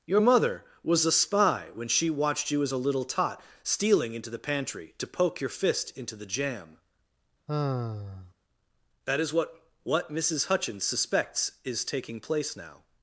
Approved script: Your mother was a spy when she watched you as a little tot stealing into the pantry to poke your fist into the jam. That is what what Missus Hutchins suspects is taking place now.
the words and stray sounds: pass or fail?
fail